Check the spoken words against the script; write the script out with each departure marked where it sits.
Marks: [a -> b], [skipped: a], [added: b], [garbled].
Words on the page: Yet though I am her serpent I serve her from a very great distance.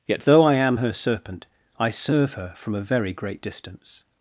Yet though I am her serpent I serve her from a very great distance.